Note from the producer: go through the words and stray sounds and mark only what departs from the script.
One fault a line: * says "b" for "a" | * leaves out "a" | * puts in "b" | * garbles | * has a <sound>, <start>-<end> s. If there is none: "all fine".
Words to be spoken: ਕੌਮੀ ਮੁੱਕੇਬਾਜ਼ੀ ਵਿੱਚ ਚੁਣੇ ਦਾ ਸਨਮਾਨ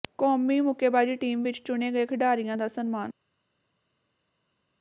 * puts in "ਟੀਮ"
* puts in "ਗਏ ਖਿਡਾਰੀਆਂ"